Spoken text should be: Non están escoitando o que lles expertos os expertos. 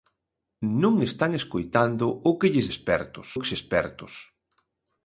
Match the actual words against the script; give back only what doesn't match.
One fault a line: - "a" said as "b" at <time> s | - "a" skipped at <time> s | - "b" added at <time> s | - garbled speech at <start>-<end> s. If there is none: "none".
none